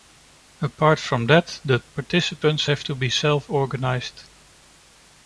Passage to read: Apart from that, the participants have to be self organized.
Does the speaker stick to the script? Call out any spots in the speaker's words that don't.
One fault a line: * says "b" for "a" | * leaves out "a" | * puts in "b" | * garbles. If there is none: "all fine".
all fine